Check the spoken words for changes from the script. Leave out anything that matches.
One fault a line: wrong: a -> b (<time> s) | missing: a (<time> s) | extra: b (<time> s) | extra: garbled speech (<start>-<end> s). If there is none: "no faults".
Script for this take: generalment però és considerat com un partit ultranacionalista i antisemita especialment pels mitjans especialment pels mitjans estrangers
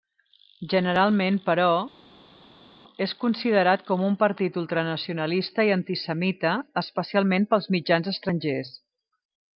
missing: especialment pels mitjans (8.1 s)